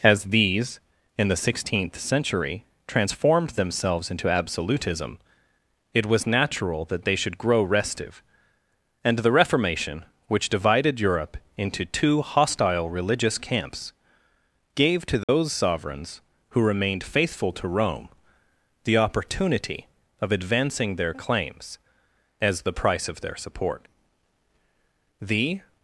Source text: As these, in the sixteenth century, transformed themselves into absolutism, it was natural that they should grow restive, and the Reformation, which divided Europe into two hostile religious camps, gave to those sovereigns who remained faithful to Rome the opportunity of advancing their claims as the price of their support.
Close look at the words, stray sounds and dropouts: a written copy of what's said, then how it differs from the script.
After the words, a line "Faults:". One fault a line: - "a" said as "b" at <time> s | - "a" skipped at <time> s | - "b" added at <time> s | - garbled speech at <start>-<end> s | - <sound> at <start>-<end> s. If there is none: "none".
As these, in the sixteenth century, transformed themselves into absolutism, it was natural that they should grow restive, and the Reformation, which divided Europe into two hostile religious camps, gave to those sovereigns who remained faithful to Rome the opportunity of advancing their claims as the price of their support. The
Faults:
- dropout at 15.2-15.3 s
- "The" added at 25.2 s